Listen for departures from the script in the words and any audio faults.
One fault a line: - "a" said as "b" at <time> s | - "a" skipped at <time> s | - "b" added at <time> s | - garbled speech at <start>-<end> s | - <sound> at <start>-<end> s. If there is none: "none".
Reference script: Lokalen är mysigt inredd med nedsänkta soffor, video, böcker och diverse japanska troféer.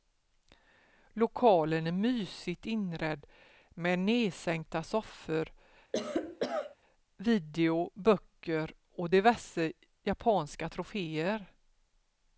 - cough at 5.9-6.8 s